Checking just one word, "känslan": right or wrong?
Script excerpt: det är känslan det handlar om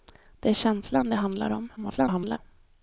right